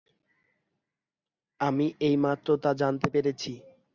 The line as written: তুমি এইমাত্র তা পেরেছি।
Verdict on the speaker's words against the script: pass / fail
fail